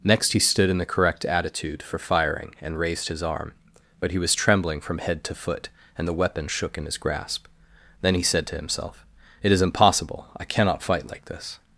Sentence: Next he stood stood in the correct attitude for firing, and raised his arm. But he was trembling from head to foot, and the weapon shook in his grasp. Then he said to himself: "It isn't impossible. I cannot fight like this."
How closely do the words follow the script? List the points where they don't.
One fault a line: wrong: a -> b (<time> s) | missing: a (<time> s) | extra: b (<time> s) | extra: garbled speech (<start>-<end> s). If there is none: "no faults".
missing: stood (0.7 s)
wrong: isn't -> is (9.5 s)